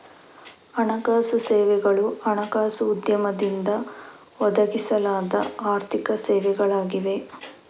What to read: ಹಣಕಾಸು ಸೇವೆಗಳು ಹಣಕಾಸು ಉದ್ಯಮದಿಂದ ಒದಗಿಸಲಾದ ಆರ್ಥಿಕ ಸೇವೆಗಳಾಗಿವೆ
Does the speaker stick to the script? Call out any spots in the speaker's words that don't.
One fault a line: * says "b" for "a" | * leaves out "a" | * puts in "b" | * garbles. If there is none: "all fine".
all fine